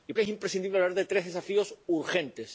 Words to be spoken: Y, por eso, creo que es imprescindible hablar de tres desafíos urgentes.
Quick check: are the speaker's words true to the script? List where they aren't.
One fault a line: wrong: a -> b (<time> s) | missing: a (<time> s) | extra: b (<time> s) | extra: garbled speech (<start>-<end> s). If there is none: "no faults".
missing: por eso creo (0.1 s)